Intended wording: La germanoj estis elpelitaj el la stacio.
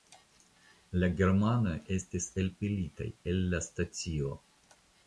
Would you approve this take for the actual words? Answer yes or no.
yes